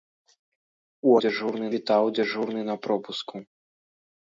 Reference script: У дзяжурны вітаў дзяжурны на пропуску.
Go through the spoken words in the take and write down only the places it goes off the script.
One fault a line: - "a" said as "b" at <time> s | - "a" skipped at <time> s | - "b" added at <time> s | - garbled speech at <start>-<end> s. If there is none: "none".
none